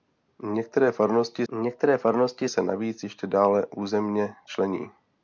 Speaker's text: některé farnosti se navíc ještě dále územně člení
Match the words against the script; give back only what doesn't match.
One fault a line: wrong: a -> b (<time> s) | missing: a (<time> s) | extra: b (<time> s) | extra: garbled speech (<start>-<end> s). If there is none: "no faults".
extra: některé farnosti (1.5 s)